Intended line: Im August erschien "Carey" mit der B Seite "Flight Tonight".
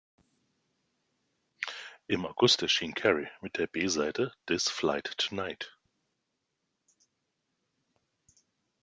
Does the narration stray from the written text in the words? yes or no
yes